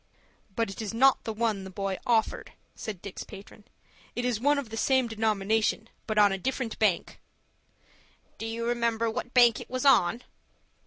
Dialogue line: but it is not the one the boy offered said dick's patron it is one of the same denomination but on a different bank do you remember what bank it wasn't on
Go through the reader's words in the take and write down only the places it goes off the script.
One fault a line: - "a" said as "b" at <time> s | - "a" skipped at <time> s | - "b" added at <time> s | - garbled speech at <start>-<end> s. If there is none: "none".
- "wasn't" said as "was" at 9.7 s